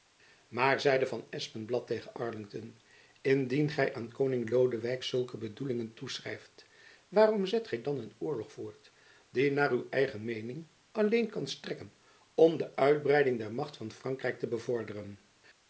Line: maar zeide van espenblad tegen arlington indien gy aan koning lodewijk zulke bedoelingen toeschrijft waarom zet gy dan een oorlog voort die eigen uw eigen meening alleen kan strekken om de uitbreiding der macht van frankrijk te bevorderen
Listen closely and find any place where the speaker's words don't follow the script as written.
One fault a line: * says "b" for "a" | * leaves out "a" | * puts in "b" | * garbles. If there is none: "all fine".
* says "naar" for "eigen"